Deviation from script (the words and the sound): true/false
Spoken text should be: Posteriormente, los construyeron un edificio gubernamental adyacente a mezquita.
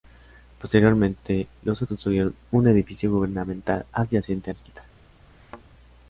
true